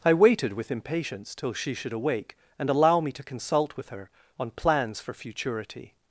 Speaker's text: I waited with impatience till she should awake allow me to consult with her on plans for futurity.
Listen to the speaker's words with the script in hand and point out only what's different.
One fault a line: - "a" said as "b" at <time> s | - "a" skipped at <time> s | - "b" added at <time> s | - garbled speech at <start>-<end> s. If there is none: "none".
- "and" added at 2.6 s